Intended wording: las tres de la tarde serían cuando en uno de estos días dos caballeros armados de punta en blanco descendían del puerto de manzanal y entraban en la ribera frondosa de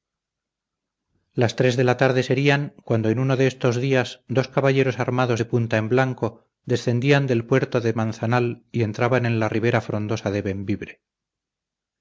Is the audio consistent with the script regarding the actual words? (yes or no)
yes